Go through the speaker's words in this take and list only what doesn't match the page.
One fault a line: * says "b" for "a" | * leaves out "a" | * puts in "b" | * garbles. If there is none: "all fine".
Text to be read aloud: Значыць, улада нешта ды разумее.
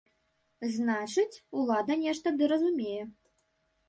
all fine